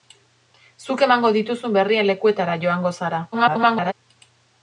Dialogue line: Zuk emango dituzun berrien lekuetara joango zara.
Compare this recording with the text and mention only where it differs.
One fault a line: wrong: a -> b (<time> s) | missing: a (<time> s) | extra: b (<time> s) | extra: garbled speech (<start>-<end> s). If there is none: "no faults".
extra: garbled speech (3.3-3.9 s)